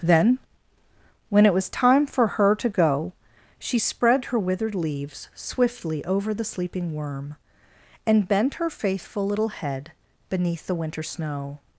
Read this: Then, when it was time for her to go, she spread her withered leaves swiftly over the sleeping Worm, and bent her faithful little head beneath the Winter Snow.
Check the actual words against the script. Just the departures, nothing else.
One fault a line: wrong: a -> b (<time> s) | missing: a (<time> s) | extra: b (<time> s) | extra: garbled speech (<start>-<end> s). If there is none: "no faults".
no faults